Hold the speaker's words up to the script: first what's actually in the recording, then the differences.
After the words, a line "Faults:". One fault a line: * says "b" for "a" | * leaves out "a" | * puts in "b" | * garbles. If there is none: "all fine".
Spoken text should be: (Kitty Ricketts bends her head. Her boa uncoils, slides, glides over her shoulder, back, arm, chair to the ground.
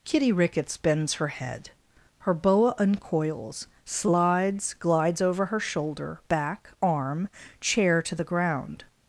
(Kitty Ricketts bends her head. Her boa uncoils, slides, glides over her shoulder, back, arm, chair to the ground.
Faults:
all fine